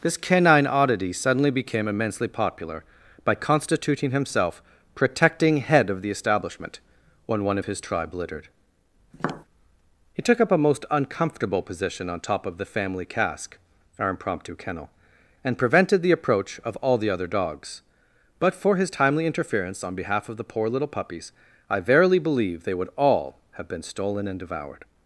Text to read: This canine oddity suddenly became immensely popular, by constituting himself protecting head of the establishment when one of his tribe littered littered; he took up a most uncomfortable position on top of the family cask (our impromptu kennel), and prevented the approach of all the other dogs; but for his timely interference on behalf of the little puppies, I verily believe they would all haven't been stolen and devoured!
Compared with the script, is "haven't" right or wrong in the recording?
wrong